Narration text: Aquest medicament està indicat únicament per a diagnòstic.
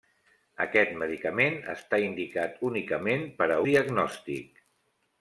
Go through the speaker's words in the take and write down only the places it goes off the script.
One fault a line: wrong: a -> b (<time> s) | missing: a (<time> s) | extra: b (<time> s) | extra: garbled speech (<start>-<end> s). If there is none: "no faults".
no faults